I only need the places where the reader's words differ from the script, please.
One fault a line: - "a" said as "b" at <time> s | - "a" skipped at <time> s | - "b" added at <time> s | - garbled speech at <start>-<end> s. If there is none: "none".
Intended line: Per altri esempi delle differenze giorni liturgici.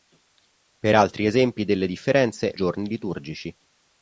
none